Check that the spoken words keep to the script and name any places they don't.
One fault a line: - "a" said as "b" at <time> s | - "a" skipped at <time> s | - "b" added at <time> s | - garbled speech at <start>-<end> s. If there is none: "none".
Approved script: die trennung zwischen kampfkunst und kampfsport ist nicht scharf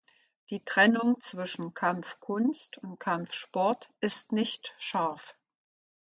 none